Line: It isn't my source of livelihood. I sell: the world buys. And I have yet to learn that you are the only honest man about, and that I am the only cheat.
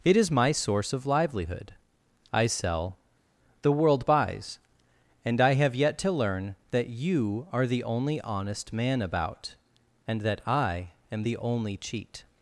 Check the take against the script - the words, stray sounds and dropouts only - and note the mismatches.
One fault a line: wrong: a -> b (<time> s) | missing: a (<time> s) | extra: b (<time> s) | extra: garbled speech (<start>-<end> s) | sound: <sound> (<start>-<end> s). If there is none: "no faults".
wrong: isn't -> is (0.2 s)